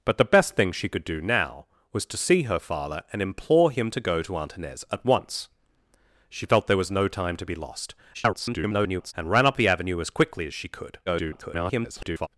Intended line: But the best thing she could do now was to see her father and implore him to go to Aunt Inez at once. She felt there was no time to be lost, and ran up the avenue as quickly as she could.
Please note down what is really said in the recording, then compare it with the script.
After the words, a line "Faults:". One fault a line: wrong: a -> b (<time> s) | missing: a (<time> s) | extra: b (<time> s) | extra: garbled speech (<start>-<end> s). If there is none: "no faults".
But the best thing she could do now was to see her father and implore him to go to Aunt Inez at once. She felt there was no time to be lost, [garbled] and ran up the avenue as quickly as she could. [garbled]
Faults:
extra: garbled speech (8.1-9.1 s)
extra: garbled speech (11.1-12.3 s)